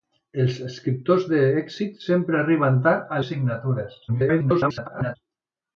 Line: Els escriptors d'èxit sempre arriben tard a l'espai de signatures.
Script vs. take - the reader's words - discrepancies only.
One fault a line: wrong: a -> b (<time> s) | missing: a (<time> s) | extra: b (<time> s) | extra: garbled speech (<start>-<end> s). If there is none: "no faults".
missing: l'espai (3.2 s)
extra: garbled speech (4.1-5.2 s)